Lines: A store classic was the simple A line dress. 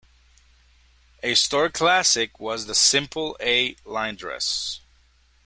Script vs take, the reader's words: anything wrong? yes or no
no